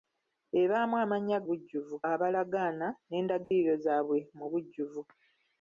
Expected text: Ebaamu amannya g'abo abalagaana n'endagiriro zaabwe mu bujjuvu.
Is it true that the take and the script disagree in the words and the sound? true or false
true